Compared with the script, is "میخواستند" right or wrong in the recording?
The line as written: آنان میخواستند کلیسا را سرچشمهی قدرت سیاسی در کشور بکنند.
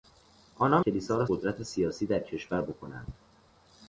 wrong